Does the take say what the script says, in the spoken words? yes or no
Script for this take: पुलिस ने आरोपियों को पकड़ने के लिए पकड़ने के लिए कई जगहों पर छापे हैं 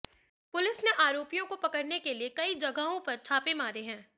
no